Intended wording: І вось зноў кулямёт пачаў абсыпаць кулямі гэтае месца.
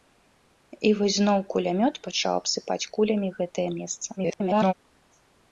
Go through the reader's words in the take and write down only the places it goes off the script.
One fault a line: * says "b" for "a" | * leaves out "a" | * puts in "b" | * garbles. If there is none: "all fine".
* garbles